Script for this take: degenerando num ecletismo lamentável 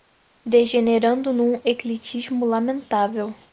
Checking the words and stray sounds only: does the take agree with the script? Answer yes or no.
yes